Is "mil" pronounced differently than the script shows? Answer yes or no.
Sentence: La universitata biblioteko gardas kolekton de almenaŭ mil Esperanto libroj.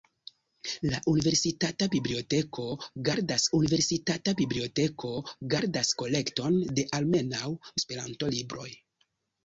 yes